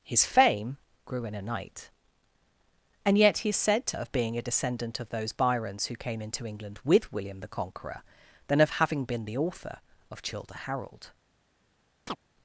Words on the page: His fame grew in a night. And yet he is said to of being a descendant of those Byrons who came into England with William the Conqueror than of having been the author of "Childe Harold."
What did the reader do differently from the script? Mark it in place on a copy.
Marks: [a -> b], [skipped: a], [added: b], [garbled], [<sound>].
His fame grew in a night. And yet he is said to of being a descendant of those Byrons who came into England with William the Conqueror than of having been the author of "Childe Harold." [chirp]